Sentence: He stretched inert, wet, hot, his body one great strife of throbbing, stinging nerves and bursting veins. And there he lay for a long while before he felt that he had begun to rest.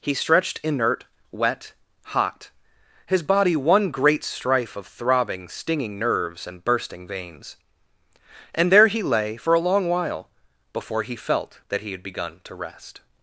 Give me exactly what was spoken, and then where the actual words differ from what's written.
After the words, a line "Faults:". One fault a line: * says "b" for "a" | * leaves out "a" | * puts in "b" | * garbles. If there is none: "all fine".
He stretched inert, wet, hot, his body one great strife of throbbing, stinging nerves and bursting veins. And there he lay for a long while before he felt that he had begun to rest.
Faults:
all fine